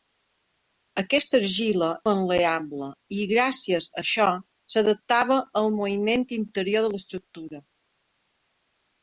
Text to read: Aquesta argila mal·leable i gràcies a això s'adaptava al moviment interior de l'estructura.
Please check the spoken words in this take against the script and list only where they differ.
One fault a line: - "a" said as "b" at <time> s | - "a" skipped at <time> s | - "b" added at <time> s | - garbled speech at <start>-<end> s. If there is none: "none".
none